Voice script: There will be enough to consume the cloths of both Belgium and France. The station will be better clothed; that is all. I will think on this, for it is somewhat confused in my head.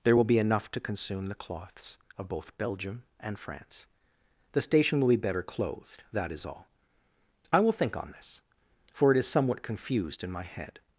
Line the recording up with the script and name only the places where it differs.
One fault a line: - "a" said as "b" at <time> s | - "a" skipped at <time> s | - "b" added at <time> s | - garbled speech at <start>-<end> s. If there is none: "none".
none